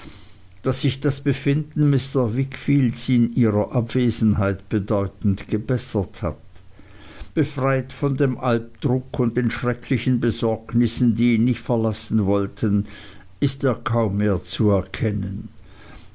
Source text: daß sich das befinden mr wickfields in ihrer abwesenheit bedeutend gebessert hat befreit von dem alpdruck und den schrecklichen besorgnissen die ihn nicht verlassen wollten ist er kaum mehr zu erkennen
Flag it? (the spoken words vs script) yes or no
no